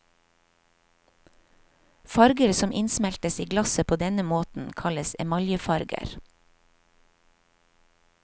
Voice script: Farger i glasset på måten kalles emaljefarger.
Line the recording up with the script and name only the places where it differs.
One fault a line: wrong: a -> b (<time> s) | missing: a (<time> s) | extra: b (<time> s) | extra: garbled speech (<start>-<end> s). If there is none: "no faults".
extra: som innsmeltes (2.5 s)
extra: denne (4.0 s)